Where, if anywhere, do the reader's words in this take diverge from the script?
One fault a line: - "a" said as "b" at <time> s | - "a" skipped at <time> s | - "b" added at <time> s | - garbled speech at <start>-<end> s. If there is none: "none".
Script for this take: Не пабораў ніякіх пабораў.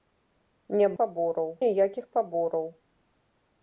none